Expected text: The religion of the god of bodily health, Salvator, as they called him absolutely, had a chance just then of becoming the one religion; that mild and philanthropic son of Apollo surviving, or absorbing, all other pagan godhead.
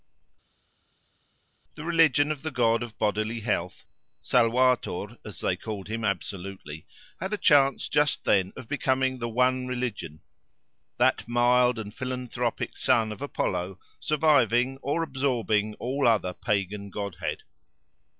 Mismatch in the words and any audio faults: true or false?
false